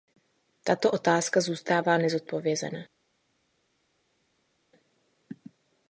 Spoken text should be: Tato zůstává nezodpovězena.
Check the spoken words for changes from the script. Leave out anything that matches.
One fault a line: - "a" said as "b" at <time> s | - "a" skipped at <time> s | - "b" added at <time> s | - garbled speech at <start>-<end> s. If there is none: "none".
- "otázka" added at 0.9 s